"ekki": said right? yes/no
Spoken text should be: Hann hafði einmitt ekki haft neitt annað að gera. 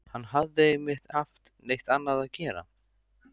no